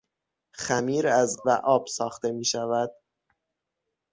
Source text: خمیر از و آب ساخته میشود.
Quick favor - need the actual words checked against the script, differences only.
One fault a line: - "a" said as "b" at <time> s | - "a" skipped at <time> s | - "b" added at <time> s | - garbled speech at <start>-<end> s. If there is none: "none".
none